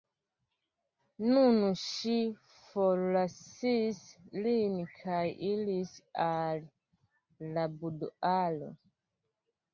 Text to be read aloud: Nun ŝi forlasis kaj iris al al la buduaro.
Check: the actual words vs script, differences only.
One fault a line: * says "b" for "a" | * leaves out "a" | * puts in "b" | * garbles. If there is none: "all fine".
* puts in "lin"
* leaves out "al"